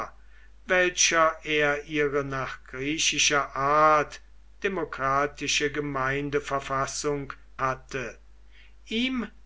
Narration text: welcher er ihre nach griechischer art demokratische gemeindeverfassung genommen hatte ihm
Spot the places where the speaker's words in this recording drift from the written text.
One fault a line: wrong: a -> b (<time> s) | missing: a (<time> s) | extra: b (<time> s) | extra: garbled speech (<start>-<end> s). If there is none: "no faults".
missing: genommen (7.3 s)